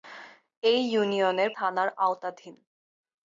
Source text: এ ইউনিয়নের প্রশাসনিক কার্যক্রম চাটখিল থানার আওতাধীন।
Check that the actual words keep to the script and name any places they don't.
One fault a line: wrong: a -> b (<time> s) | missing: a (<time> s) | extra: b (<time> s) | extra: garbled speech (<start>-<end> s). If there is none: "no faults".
missing: প্রশাসনিক কার্যক্রম চাটখিল (1.5 s)